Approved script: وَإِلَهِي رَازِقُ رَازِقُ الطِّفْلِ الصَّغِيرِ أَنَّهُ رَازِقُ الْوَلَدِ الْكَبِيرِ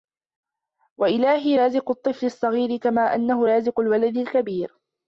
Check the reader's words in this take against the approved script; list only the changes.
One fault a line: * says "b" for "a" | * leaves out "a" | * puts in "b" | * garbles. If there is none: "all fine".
* leaves out "رَازِقُ"
* puts in "كَمَا"